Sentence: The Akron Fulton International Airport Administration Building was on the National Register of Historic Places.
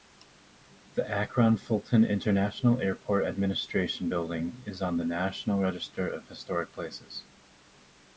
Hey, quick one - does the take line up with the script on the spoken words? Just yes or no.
no